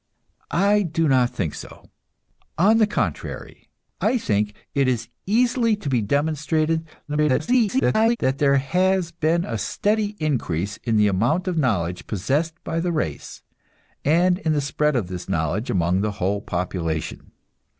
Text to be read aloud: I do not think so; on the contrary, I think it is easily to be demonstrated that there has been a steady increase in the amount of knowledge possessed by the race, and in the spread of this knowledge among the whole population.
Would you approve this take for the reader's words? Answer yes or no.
no